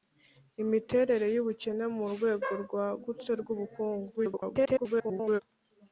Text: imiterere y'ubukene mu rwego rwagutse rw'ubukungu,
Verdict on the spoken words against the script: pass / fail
fail